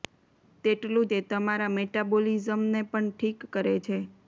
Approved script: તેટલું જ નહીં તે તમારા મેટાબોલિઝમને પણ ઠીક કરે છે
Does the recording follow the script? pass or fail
fail